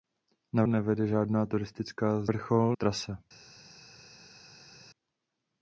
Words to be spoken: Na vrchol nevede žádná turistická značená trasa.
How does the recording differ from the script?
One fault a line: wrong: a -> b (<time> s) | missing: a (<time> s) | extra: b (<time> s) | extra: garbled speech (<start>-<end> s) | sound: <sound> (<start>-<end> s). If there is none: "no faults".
missing: vrchol (0.6 s)
wrong: značená -> vrchol (2.3 s)